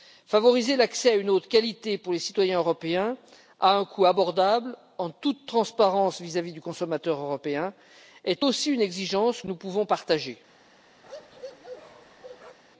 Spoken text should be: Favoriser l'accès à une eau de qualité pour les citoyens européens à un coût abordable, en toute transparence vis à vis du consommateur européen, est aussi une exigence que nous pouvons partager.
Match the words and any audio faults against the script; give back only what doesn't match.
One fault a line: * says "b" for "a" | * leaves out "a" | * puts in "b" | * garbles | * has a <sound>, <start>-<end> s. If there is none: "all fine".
* leaves out "que"
* has a bark, 11.0-12.6 s